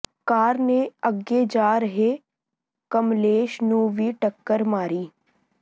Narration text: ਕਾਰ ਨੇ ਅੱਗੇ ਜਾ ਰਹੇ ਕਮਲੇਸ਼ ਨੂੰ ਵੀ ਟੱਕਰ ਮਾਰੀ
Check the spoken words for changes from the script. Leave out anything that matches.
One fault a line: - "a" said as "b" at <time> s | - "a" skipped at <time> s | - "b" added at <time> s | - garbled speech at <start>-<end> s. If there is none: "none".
none